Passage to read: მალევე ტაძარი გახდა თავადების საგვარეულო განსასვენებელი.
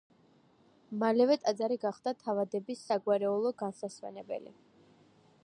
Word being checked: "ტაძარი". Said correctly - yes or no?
yes